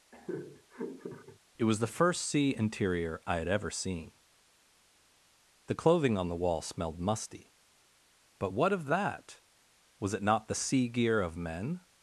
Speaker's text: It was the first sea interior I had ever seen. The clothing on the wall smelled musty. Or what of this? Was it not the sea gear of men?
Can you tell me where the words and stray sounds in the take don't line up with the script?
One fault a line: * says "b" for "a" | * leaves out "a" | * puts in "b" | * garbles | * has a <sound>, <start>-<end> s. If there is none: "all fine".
* has a laugh, 0.1-1.4 s
* says "But" for "Or"
* says "that" for "this"